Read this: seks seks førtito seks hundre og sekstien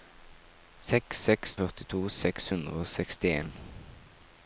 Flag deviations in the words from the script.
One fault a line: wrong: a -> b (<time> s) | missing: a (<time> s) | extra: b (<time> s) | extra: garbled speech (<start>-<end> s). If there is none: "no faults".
no faults